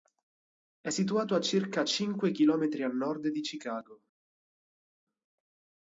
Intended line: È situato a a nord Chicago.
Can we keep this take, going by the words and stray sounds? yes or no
no